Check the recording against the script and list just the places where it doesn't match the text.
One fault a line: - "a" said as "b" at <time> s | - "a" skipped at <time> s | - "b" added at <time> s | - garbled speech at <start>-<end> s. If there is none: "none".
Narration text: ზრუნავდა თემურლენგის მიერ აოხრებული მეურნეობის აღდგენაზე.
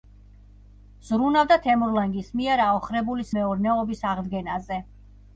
none